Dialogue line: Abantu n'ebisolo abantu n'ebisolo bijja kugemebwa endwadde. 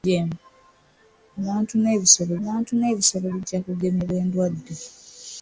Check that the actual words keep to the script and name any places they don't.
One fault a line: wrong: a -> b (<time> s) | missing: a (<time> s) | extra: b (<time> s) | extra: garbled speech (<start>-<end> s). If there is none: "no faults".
no faults